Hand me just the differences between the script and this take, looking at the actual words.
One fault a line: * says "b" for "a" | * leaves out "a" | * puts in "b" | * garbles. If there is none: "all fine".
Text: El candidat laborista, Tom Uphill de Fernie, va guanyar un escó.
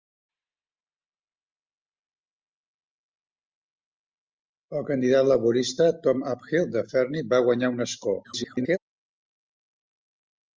* garbles